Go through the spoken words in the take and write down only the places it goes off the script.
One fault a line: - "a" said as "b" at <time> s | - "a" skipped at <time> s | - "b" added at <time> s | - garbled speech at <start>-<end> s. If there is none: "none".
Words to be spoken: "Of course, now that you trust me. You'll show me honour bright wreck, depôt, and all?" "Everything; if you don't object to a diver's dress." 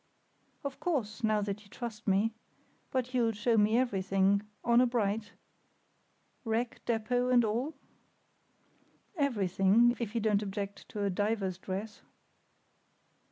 - "But" added at 2.9 s
- "everything" added at 3.8 s